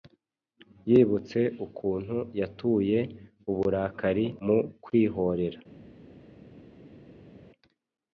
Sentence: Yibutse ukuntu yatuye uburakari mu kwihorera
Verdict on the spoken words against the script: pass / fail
pass